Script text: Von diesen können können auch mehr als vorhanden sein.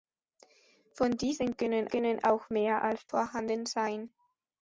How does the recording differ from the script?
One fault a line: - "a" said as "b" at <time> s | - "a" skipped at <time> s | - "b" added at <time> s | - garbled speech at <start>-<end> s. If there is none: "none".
none